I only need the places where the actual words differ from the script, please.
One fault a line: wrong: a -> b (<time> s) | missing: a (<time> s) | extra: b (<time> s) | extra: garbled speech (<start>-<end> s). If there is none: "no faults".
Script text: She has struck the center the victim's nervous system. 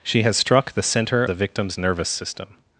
no faults